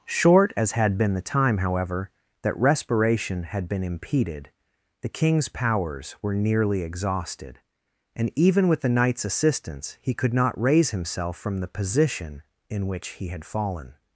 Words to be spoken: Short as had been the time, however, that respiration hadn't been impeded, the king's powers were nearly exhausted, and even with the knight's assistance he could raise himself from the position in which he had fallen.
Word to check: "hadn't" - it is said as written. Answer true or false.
false